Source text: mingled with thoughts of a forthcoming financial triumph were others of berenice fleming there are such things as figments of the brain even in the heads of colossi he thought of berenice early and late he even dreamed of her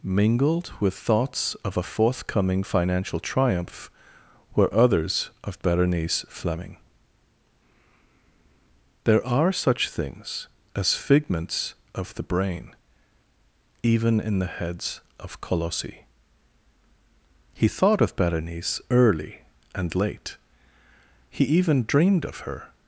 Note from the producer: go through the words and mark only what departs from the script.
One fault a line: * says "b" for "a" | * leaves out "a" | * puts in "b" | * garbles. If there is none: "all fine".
all fine